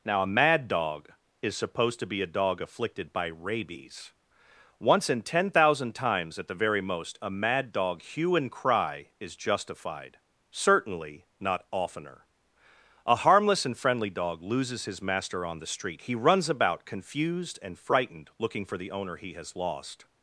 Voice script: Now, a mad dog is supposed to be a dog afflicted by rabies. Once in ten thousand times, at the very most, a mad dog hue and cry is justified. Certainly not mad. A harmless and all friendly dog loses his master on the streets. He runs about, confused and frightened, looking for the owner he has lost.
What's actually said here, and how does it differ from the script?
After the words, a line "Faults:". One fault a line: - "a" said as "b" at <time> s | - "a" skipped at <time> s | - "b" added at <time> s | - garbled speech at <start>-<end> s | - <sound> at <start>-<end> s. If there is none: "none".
Now, a mad dog is supposed to be a dog afflicted by rabies. Once in ten thousand times, at the very most, a mad dog hue and cry is justified. Certainly not oftener. A harmless and friendly dog loses his master on the street. He runs about, confused and frightened, looking for the owner he has lost.
Faults:
- "mad" said as "oftener" at 11.7 s
- "all" skipped at 13.8 s
- "streets" said as "street" at 15.7 s